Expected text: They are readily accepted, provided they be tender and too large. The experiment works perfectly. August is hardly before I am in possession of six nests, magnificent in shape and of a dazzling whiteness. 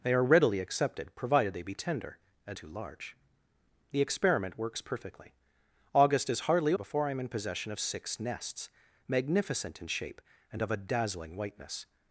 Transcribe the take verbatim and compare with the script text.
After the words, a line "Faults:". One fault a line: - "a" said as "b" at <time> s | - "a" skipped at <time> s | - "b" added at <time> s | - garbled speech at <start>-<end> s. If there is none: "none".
They are readily accepted, provided they be tender and too large. The experiment works perfectly. August is hardly before I am in possession of six nests, magnificent in shape and of a dazzling whiteness.
Faults:
none